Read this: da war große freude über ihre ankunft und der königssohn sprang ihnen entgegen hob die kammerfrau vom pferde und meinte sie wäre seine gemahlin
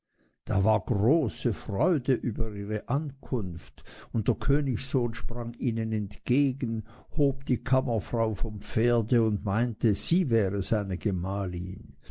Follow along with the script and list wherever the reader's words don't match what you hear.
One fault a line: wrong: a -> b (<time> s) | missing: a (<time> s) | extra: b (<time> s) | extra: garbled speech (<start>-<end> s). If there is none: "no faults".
no faults